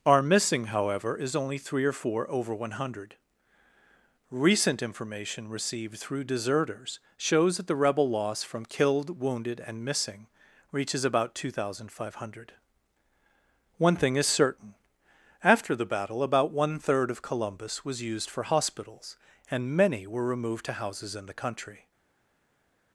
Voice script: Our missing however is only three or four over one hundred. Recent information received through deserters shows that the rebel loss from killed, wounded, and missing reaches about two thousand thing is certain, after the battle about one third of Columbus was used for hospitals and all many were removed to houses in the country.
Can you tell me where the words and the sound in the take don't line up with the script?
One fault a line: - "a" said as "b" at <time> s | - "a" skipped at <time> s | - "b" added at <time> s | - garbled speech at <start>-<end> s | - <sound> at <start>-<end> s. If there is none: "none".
- "five hundred One" added at 11.9 s
- "all" skipped at 19.8 s